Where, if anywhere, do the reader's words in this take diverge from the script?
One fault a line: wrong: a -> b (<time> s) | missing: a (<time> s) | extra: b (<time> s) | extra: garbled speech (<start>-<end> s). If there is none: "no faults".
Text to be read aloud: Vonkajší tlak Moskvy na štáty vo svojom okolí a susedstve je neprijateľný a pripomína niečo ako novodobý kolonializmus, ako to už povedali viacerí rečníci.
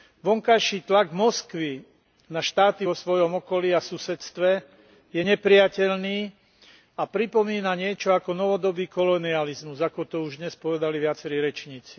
extra: dnes (10.4 s)